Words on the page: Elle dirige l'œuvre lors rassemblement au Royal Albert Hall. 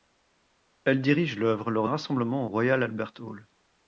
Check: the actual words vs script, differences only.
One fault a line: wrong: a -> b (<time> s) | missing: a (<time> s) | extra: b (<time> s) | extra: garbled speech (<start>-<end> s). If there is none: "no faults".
no faults